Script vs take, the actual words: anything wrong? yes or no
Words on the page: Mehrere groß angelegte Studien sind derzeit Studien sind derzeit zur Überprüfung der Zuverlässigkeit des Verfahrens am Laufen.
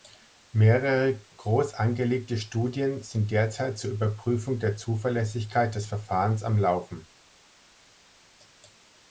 yes